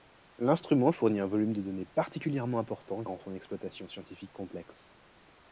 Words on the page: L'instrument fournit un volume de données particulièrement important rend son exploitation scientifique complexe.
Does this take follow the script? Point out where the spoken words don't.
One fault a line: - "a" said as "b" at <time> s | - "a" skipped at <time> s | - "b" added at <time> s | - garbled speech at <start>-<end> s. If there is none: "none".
none